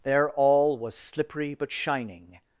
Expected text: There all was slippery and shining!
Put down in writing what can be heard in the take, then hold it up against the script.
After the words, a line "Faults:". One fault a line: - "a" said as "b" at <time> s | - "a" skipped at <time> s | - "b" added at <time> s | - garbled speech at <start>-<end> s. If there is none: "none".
There all was slippery but shining!
Faults:
- "and" said as "but" at 1.6 s